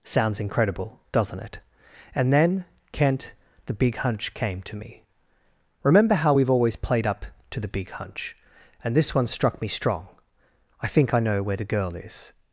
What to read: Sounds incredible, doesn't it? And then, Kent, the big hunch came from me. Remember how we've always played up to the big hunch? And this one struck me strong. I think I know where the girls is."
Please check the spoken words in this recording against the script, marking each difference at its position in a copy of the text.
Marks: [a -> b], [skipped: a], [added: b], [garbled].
Sounds incredible, doesn't it? And then, Kent, the big hunch came [from -> to] me. Remember how we've always played up to the big hunch? And this one struck me strong. I think I know where the [girls -> girl] is."